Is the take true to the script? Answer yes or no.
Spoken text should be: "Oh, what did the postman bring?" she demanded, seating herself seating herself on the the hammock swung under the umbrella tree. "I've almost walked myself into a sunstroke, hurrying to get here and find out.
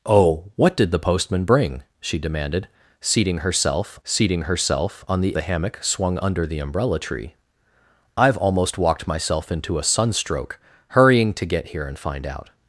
yes